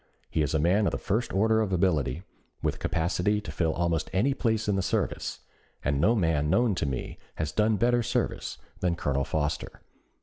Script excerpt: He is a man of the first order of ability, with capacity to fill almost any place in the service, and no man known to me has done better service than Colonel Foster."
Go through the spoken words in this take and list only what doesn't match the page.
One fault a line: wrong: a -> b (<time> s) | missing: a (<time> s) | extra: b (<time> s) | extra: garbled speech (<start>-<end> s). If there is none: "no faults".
no faults